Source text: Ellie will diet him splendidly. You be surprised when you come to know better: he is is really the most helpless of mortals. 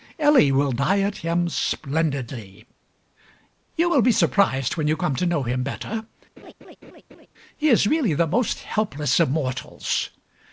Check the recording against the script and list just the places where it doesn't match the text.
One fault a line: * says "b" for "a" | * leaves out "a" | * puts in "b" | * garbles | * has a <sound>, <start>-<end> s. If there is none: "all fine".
* puts in "will"
* puts in "him"
* has a laugh, 6.4-7.3 s
* leaves out "is"